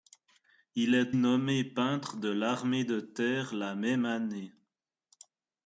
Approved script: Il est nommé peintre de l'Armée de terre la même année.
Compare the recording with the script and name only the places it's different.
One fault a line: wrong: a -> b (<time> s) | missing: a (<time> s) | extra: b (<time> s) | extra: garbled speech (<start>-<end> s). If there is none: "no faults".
no faults